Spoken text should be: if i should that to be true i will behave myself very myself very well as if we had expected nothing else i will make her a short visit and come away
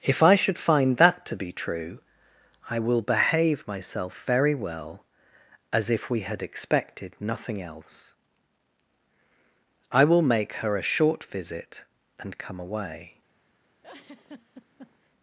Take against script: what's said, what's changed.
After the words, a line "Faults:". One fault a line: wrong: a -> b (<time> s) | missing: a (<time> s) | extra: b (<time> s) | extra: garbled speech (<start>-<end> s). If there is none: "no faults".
if i should find that to be true i will behave myself very well as if we had expected nothing else i will make her a short visit and come away
Faults:
extra: find (0.6 s)
missing: myself very (4.6 s)